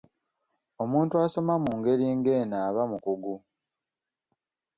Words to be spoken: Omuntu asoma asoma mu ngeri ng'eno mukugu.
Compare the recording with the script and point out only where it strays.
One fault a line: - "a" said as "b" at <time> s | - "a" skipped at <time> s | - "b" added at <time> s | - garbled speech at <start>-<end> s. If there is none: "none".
- "asoma" skipped at 1.5 s
- "aba" added at 2.7 s